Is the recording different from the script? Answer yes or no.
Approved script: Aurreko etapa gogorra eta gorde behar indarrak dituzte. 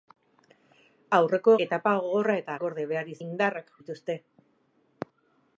no